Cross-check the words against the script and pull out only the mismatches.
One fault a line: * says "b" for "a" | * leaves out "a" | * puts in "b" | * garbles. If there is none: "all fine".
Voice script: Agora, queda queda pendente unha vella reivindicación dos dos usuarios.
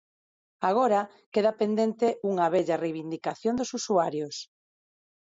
* leaves out "queda"
* leaves out "dos"